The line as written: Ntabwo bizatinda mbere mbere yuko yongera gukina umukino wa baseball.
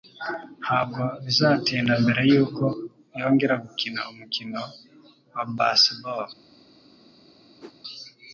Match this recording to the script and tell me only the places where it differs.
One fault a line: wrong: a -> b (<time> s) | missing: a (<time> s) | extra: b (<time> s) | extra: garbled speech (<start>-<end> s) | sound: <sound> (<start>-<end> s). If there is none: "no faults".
missing: mbere (2.2 s)
sound: whoosh (7.6-7.7 s)